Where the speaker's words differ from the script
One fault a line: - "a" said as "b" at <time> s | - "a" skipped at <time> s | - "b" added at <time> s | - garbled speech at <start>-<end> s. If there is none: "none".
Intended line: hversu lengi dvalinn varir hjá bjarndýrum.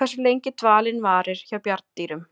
none